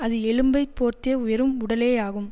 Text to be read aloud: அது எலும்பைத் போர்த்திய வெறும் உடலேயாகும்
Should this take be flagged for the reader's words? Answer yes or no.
no